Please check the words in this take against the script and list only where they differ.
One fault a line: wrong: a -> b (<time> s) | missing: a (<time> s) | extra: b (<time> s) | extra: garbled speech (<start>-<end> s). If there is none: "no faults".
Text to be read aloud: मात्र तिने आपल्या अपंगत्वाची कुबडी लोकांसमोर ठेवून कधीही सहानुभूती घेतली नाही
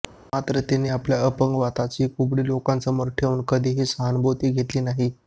no faults